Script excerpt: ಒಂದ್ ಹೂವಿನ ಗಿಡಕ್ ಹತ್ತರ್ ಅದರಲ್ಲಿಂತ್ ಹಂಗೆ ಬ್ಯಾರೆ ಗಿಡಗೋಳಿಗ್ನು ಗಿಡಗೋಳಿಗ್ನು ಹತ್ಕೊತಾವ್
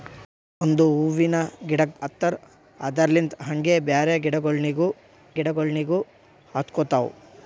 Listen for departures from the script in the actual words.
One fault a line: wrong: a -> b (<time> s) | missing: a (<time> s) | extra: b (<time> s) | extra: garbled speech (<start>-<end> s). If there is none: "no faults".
no faults